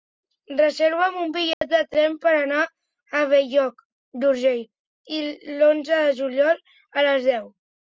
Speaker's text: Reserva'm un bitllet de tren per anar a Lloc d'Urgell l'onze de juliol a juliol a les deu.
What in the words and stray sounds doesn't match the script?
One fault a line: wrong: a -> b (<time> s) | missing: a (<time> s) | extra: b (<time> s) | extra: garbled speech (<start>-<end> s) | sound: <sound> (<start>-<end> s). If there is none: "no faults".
sound: dropout (1.5-1.6 s)
extra: Bell (3.4 s)
missing: juliol a (7.1 s)